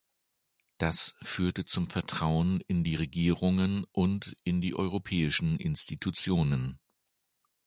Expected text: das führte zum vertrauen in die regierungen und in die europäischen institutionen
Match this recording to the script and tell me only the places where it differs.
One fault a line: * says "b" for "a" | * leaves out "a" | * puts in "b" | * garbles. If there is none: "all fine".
all fine